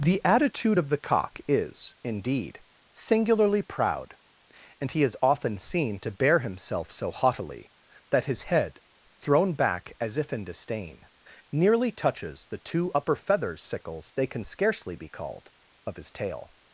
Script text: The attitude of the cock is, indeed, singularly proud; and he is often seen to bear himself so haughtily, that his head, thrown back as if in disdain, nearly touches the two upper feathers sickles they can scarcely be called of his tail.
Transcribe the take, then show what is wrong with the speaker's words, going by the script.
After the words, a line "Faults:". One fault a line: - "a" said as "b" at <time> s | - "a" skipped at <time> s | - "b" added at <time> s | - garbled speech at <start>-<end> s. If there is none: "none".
The attitude of the cock is, indeed, singularly proud; and he is often seen to bear himself so haughtily, that his head, thrown back as if in disdain, nearly touches the two upper feathers sickles they can scarcely be called of his tail.
Faults:
none